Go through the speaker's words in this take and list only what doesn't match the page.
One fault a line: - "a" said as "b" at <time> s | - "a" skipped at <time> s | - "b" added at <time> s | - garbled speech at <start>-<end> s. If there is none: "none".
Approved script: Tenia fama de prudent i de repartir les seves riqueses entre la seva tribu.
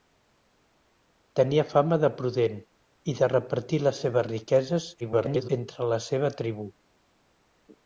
- garbled speech at 5.0-5.5 s